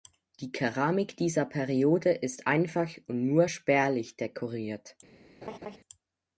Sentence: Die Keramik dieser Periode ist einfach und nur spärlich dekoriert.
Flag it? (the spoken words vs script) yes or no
no